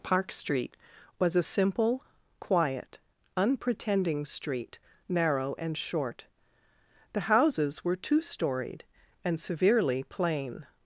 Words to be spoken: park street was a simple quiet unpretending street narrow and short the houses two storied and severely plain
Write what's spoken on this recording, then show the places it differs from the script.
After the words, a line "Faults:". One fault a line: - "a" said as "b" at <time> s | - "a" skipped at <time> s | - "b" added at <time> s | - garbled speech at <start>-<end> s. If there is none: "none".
park street was a simple quiet unpretending street narrow and short the houses were two storied and severely plain
Faults:
- "were" added at 7.8 s